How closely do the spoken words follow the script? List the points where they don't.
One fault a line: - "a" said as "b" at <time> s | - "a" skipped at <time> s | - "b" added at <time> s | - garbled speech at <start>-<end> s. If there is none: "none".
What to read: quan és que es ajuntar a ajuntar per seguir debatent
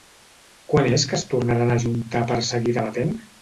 - "ajuntar" said as "tornaran" at 1.3 s